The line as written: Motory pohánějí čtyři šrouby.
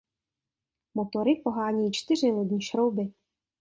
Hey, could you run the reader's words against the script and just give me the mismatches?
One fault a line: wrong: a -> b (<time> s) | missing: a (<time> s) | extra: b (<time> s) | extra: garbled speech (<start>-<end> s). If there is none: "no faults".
extra: lodní (2.3 s)